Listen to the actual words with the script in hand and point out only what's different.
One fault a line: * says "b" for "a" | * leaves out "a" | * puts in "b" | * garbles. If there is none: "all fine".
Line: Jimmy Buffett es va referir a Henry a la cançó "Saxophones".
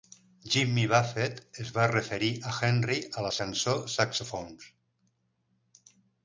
all fine